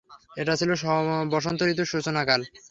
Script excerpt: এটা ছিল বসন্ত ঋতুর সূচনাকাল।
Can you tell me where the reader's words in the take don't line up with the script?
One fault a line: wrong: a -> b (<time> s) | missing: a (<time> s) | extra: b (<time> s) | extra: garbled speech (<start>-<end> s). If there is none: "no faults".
no faults